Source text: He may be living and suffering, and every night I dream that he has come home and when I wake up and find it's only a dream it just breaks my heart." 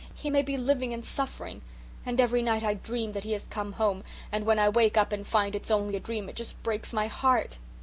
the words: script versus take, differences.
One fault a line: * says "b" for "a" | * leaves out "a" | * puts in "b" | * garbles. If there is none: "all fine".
all fine